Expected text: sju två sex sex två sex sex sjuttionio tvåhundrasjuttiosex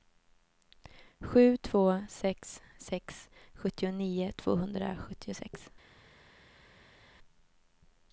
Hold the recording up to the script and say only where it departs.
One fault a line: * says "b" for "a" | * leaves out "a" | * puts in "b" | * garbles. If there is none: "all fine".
* leaves out "två sex sex"